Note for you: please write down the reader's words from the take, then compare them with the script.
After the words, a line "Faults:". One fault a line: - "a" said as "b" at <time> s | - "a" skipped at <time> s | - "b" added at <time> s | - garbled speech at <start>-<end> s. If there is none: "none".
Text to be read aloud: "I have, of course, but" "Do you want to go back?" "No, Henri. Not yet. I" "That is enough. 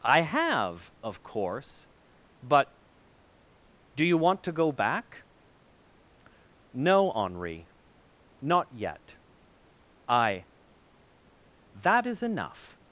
"I have, of course, but" "Do you want to go back?" "No, Henri. Not yet. I" "That is enough.
Faults:
none